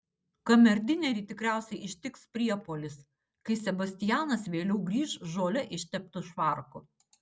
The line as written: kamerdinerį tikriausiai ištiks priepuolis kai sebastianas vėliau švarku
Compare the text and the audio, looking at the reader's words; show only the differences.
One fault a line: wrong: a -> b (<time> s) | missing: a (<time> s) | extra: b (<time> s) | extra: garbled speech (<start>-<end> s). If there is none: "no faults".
extra: grįš žole išteptu (4.9 s)